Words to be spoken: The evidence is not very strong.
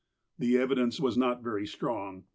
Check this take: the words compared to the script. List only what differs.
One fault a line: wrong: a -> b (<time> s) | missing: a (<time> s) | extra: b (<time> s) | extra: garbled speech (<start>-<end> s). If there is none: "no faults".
wrong: is -> was (1.0 s)